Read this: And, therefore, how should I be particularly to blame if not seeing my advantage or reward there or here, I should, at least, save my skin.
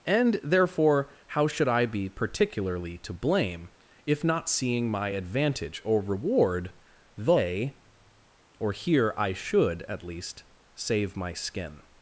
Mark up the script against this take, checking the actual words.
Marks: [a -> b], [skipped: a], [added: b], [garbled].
And, therefore, how should I be particularly to blame if not seeing my advantage or reward [there -> they] or here, I should, at least, save my skin.